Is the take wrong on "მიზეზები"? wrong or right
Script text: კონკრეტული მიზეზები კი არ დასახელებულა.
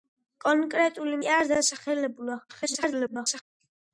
wrong